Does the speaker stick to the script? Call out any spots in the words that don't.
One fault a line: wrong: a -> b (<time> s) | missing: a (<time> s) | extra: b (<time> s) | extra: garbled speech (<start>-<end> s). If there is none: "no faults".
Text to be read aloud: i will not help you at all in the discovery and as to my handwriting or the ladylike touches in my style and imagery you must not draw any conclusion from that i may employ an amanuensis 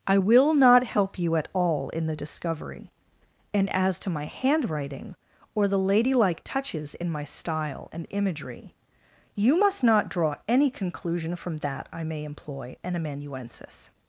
no faults